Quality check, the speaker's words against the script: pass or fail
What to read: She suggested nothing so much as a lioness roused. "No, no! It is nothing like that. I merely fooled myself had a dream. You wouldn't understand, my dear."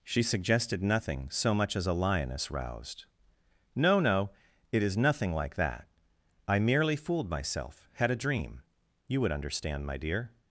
fail